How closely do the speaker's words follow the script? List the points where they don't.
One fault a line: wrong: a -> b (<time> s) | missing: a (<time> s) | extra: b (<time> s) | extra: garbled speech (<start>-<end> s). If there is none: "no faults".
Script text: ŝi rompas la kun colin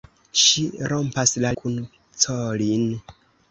no faults